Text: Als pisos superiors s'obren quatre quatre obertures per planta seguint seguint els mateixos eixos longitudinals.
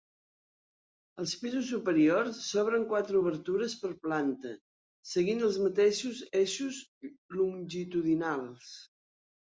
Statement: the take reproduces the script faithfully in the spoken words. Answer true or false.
false